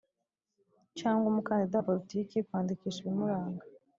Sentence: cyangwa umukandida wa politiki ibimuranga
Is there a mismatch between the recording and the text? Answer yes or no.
yes